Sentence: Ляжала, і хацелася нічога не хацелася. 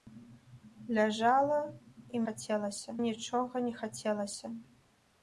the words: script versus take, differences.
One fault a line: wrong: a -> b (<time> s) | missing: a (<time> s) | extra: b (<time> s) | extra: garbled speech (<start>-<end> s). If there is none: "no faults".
no faults